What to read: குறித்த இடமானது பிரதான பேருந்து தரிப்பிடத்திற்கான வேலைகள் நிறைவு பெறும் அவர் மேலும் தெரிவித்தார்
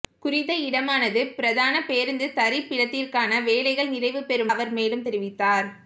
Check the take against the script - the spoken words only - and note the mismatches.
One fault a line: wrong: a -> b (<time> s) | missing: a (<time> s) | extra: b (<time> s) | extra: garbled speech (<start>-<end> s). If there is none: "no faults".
no faults